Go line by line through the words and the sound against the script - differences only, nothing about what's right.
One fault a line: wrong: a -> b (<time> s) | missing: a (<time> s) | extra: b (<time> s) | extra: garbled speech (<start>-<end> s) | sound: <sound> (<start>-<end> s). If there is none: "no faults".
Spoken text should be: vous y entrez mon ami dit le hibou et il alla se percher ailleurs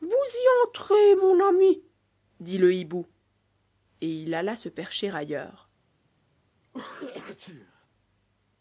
sound: sneeze (6.6-7.9 s)